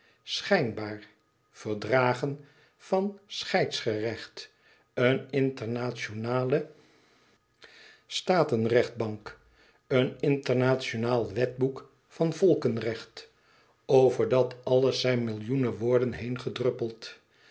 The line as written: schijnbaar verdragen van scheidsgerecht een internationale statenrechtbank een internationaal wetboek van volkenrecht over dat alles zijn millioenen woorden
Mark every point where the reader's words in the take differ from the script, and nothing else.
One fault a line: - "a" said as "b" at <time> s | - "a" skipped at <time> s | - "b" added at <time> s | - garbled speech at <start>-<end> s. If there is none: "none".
none